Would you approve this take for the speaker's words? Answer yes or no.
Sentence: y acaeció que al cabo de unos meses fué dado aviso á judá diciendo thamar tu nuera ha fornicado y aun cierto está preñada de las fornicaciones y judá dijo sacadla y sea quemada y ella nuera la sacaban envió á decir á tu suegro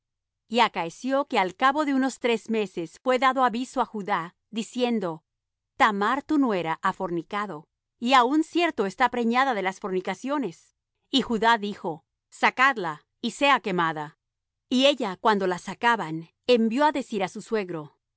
no